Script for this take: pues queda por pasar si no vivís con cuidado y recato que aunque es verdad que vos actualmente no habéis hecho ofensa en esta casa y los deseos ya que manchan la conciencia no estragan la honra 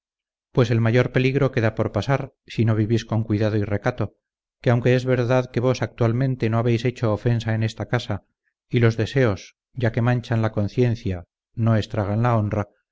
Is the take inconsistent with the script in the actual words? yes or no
yes